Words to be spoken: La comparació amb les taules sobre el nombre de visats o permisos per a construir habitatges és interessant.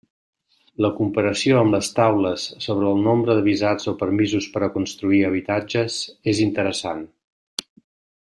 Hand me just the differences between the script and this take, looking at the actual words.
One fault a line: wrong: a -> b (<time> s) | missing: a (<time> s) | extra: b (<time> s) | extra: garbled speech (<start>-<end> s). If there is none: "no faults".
no faults